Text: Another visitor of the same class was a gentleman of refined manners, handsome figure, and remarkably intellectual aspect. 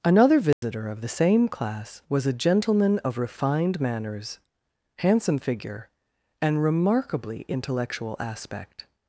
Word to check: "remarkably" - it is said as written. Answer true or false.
true